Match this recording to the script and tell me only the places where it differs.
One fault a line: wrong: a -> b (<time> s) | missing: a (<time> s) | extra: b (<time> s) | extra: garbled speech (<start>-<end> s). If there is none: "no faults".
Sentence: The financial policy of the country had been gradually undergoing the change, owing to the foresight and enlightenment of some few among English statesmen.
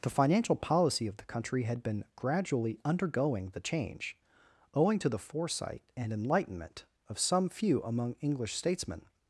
no faults